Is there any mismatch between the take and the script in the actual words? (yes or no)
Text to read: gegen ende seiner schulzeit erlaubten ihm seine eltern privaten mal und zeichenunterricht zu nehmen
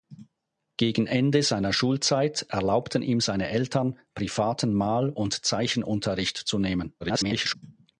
yes